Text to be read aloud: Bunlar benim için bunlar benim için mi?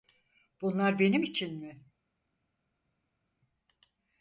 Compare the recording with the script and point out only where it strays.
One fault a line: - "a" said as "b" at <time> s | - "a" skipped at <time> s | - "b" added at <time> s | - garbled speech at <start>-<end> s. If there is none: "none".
- "bunlar benim için" skipped at 1.6 s